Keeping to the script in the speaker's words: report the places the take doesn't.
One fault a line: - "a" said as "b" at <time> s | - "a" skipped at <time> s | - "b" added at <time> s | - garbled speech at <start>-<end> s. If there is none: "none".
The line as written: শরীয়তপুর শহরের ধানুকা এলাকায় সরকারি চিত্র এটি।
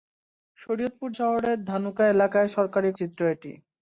none